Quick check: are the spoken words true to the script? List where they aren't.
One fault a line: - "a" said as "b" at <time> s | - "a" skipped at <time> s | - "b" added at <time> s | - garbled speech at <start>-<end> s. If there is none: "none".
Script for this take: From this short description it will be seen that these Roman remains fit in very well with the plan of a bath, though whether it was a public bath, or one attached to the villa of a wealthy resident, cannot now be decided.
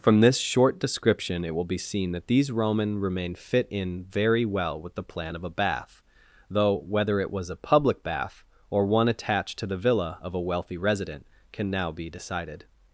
- "remains" said as "remain" at 3.0 s
- "cannot" said as "can" at 11.5 s